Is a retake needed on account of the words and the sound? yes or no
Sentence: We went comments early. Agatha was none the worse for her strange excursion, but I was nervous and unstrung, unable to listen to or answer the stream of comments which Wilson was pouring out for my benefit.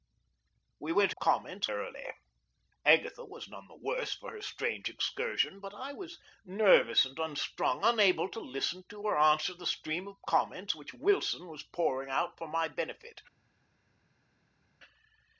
no